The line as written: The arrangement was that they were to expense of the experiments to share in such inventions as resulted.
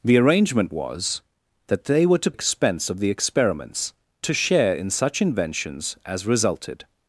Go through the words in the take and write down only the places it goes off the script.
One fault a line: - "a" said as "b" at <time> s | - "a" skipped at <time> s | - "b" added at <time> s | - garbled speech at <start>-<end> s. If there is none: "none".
none